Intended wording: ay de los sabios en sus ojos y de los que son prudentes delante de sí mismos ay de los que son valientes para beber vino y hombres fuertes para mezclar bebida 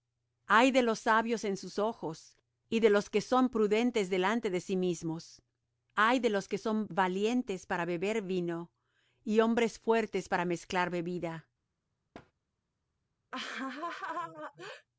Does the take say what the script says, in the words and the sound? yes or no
no